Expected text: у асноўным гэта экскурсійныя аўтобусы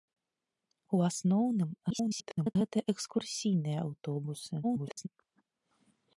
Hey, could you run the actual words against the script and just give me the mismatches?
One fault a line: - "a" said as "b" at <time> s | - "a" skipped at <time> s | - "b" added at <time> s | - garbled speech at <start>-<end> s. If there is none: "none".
- garbled speech at 1.9-2.6 s
- garbled speech at 4.6-5.1 s